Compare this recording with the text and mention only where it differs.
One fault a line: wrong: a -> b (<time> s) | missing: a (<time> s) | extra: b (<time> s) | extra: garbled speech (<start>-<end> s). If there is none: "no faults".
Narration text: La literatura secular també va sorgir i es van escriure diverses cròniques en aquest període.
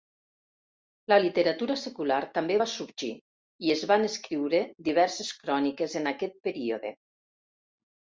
no faults